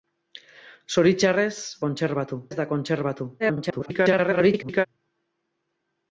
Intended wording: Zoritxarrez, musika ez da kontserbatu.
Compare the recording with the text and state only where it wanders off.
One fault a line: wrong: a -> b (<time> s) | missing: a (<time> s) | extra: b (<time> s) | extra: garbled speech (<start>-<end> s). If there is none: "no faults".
wrong: musika -> kontserbatu (1.9 s)
extra: garbled speech (3.4-4.9 s)